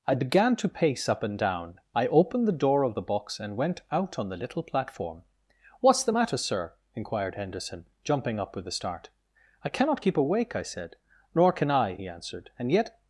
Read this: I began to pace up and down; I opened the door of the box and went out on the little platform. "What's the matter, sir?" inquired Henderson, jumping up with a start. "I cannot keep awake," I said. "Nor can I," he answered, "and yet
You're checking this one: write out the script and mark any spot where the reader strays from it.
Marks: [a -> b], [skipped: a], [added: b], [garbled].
I began to pace up and down; I opened the door of the box and went out on the little platform. "What's the matter, sir?" inquired Henderson, jumping up with a start. "I cannot keep awake," I said. "Nor can I," he answered, "and yet